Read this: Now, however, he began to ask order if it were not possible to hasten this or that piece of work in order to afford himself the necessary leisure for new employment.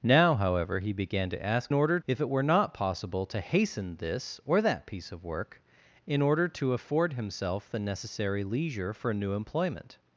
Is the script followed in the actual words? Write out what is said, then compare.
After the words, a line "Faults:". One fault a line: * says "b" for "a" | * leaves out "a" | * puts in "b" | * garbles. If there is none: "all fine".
Now, however, he began to ask order if it were not possible to hasten this or that piece of work in order to afford himself the necessary leisure for new employment.
Faults:
all fine